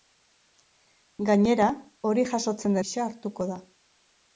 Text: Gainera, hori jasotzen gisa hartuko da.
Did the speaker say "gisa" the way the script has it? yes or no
yes